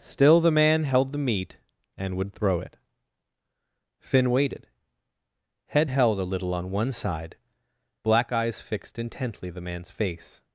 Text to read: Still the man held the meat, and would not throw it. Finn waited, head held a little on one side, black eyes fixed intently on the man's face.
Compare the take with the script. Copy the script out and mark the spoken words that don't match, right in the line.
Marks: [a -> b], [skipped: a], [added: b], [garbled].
Still the man held the meat, and would [skipped: not] throw it. Finn waited, head held a little on one side, black eyes fixed intently [skipped: on] the man's face.